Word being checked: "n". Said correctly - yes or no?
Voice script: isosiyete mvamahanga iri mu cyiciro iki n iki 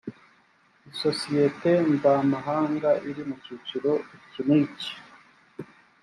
yes